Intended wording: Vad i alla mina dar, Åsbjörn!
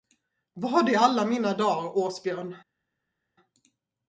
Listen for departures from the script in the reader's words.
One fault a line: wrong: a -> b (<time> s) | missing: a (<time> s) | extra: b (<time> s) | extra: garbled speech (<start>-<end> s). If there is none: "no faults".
no faults